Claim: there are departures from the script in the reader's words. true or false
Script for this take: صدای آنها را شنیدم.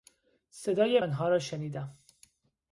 false